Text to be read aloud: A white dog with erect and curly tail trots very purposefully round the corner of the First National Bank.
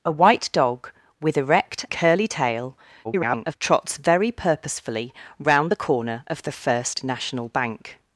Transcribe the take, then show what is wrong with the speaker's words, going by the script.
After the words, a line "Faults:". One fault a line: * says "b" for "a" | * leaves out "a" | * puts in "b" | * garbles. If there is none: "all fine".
A white dog with erect curly tail [garbled] trots very purposefully round the corner of the First National Bank.
Faults:
* leaves out "and"
* garbles